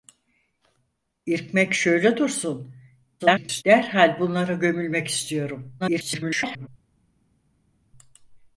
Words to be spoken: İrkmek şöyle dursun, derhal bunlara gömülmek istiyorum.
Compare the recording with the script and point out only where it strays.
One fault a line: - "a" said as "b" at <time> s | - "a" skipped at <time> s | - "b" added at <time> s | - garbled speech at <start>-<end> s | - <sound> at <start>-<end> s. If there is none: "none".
- garbled speech at 3.2-3.6 s
- garbled speech at 5.8-6.7 s